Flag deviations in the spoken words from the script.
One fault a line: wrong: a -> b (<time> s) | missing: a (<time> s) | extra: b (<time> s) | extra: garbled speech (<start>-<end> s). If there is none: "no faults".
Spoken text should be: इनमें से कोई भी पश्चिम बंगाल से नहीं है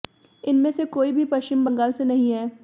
no faults